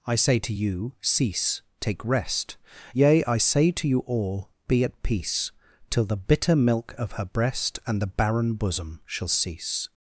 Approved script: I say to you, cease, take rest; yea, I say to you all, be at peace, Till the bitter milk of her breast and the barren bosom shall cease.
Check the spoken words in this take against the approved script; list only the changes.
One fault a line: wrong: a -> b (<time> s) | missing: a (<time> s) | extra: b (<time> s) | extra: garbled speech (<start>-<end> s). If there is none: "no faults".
no faults